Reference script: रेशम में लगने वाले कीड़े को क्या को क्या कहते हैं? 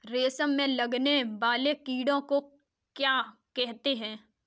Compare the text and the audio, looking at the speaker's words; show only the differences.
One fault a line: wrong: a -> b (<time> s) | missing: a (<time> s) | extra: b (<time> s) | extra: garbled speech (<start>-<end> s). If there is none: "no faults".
missing: को क्या (3.2 s)